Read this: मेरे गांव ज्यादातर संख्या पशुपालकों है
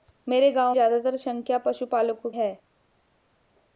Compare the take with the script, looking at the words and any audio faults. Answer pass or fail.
pass